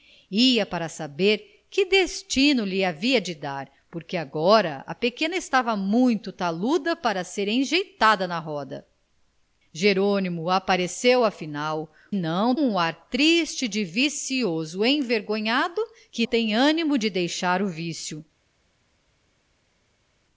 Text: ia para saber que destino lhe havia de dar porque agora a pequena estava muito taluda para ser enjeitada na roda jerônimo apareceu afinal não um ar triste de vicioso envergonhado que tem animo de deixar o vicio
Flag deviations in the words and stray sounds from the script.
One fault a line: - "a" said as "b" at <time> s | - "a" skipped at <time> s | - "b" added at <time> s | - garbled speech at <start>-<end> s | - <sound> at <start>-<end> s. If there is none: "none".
none